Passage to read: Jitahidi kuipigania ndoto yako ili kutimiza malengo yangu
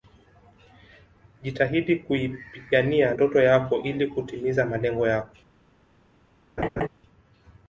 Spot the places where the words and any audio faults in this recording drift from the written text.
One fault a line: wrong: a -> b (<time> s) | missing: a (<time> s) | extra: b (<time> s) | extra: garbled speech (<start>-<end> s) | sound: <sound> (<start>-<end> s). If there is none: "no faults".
wrong: yangu -> yako (5.1 s)
sound: laugh (6.6-6.9 s)